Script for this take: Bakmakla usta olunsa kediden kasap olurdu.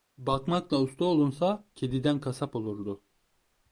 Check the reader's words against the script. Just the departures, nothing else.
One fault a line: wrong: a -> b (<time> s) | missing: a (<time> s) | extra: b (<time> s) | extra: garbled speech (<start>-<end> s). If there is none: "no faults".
no faults